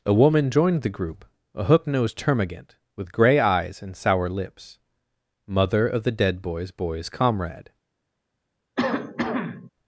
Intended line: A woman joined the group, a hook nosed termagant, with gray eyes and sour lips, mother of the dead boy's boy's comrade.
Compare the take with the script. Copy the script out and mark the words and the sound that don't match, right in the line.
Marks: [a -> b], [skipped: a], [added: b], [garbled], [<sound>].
A woman joined the group, a hook nosed termagant, with gray eyes and sour lips, mother of the dead boy's boy's comrade. [cough]